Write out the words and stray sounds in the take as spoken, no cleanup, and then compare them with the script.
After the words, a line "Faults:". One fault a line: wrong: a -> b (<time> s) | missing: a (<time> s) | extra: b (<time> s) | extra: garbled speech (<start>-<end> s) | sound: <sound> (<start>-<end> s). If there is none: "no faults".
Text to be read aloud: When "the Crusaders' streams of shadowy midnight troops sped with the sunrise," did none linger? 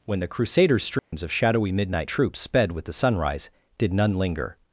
When "the Crusaders' streams of shadowy midnight troops sped with the sunrise," did none linger?
Faults:
sound: dropout (1.0-1.1 s)